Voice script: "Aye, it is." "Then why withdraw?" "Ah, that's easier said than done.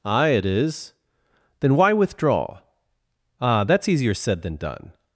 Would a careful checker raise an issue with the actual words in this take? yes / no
no